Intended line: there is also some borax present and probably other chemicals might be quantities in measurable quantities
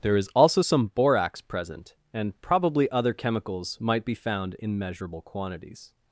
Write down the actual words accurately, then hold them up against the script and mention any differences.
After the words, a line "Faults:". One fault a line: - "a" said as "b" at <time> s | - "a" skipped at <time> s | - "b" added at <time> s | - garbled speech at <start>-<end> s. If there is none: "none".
there is also some borax present and probably other chemicals might be found in measurable quantities
Faults:
- "quantities" said as "found" at 4.1 s